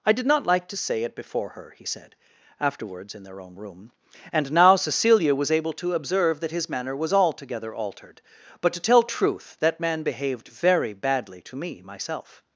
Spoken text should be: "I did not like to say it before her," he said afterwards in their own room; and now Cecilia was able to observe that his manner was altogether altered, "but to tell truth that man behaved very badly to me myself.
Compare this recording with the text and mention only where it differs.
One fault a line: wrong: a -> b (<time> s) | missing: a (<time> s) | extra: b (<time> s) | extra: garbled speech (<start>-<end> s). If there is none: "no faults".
no faults